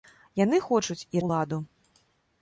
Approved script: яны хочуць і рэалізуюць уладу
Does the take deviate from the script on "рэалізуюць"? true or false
true